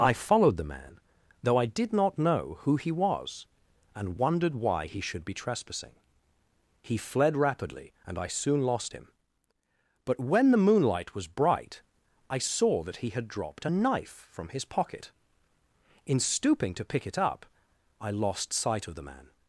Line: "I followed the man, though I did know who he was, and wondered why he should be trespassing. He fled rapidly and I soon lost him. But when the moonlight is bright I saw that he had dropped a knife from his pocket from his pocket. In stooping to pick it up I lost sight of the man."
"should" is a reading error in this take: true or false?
false